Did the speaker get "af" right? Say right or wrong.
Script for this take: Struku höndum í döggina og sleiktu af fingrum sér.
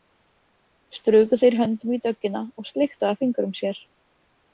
right